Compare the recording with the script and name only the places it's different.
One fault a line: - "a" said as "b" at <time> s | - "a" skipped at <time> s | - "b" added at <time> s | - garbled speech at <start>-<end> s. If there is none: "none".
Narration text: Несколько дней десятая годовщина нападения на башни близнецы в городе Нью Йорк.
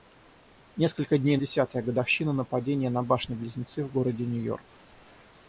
none